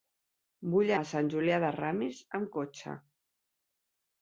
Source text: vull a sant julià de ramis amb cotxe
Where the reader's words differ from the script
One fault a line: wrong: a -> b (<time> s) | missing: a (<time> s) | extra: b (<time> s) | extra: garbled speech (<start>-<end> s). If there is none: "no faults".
no faults